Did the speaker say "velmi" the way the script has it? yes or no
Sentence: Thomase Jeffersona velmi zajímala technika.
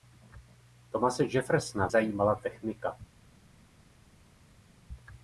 no